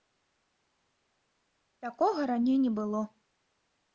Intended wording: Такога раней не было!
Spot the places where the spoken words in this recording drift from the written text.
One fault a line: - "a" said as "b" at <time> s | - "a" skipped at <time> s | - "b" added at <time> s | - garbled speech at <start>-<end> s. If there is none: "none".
none